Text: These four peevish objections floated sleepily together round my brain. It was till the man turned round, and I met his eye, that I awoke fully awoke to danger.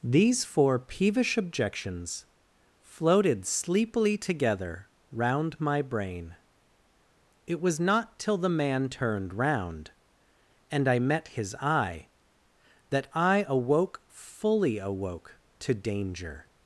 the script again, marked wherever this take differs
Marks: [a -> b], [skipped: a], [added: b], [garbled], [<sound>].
These four peevish objections floated sleepily together round my brain. It was [added: not] till the man turned round, and I met his eye, that I awoke fully awoke to danger.